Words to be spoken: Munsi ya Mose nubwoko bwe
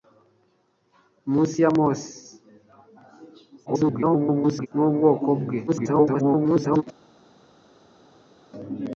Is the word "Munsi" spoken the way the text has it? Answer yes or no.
yes